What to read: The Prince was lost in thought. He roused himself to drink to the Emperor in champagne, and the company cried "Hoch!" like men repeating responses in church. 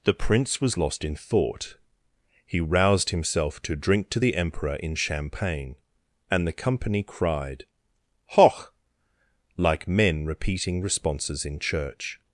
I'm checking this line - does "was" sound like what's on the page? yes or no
yes